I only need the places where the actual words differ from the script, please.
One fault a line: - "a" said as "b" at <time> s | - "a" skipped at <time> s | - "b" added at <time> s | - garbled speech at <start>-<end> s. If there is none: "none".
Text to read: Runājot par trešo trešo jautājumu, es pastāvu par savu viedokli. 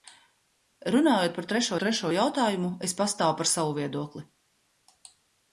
none